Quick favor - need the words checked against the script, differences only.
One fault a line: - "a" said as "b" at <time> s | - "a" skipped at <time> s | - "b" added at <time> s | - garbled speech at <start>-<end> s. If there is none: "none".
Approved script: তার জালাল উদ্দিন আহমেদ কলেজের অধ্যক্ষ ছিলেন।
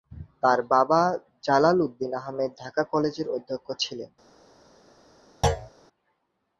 - "বাবা" added at 0.7 s
- "ঢাকা" added at 2.6 s